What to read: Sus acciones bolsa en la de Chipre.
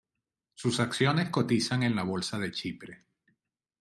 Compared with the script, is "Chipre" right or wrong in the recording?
right